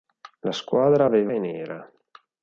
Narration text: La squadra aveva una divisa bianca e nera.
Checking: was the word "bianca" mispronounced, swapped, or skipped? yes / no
yes